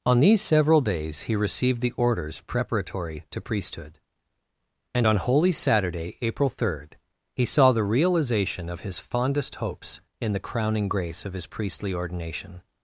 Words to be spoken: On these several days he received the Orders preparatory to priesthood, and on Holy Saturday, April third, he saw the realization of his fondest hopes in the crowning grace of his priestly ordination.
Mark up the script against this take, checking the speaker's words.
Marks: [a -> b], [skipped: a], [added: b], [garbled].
On these several days he received the Orders preparatory to priesthood, and on Holy Saturday, April third, he saw the realization of his fondest hopes in the crowning grace of his priestly ordination.